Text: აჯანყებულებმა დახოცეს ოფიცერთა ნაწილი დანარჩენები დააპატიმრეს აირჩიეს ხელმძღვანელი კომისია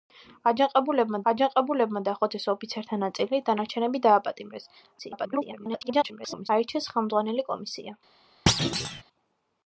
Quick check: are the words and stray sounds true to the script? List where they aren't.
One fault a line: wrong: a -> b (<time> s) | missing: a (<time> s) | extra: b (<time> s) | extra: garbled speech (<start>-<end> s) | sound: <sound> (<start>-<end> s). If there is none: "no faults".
extra: აჯანყებულებმა (1.3 s)
extra: garbled speech (5.0-6.5 s)
sound: thud (8.5-9.0 s)